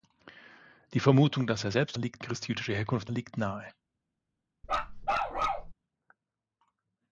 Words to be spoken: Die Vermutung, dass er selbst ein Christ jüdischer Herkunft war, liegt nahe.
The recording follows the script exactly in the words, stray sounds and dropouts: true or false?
false